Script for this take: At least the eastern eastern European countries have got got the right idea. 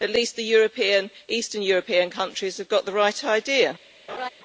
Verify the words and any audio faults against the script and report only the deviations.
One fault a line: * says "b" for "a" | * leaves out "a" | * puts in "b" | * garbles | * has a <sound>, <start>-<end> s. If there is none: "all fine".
* leaves out "eastern"
* leaves out "got"
* has a laugh, 4.1-4.3 s